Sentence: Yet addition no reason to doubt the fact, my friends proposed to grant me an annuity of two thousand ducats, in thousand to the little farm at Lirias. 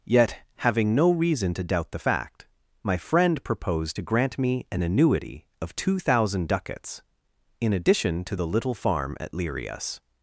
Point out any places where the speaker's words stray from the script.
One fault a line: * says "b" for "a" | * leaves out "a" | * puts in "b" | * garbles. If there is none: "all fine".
* says "having" for "addition"
* says "friend" for "friends"
* says "addition" for "thousand"